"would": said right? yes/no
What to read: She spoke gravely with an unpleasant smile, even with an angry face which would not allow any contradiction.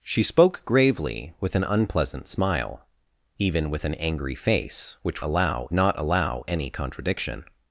no